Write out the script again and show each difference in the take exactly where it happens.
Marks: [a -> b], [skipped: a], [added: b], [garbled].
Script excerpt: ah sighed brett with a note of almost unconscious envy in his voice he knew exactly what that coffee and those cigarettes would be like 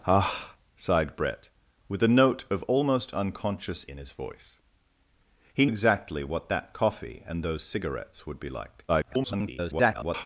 ah sighed brett with a note of almost unconscious [skipped: envy] in his voice he [skipped: knew] exactly what that coffee and those cigarettes would be like [garbled]